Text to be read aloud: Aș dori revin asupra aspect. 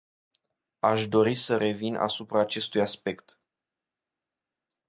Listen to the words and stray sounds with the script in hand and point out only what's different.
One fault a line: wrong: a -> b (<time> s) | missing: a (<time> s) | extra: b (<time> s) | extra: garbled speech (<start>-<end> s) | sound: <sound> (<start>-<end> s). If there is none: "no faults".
extra: să (1.4 s)
extra: acestui (2.4 s)